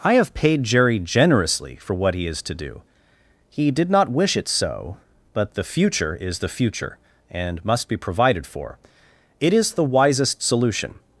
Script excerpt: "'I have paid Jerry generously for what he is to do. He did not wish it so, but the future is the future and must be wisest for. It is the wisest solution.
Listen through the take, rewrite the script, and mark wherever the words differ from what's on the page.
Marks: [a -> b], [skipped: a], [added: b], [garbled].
"'I have paid Jerry generously for what he is to do. He did not wish it so, but the future is the future and must be [wisest -> provided] for. It is the wisest solution.